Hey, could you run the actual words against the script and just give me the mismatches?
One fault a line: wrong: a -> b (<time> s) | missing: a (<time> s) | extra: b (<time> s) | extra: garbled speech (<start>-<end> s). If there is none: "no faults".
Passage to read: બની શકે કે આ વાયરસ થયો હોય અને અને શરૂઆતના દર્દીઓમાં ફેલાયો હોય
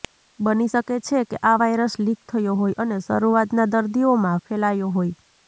extra: છે (1.1 s)
extra: લીક (2.0 s)
missing: અને (3.0 s)